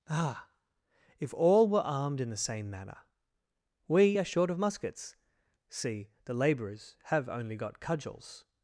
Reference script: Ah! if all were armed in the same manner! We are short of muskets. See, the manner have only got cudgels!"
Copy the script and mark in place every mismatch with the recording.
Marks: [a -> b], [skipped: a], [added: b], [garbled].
Ah! if all were armed in the same manner! We are short of muskets. See, the [manner -> labourers] have only got cudgels!"